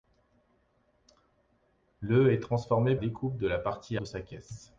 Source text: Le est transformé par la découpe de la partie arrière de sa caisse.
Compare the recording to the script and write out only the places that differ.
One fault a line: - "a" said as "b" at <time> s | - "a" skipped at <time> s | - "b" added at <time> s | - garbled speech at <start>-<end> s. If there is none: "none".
- "par la" skipped at 3.0 s
- "arrière" skipped at 4.0 s